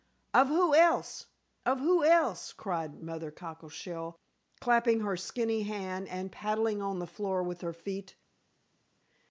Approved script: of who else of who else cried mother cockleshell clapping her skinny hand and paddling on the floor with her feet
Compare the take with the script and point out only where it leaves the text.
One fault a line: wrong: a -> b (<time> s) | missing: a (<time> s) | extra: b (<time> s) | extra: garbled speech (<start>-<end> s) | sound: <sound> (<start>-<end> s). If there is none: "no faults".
no faults